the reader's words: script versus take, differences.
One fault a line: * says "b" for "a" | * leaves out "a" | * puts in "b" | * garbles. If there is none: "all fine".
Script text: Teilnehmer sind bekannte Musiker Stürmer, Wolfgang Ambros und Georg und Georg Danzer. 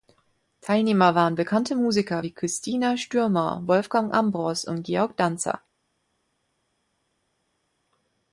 * says "waren" for "sind"
* puts in "wie Christina"
* leaves out "und Georg"